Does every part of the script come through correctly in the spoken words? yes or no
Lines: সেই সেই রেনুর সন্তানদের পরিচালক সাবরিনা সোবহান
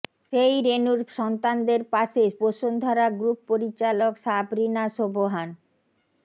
no